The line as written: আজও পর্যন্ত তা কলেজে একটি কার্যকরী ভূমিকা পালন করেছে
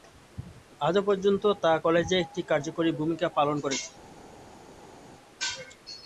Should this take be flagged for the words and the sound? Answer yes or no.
no